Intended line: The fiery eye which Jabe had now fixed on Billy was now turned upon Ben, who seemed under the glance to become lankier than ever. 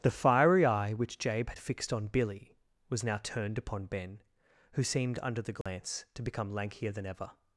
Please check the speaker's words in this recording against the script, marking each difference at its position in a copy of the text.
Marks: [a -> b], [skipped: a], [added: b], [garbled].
The fiery eye which Jabe had [skipped: now] fixed on Billy was now turned upon Ben, who seemed under the glance to become lankier than ever.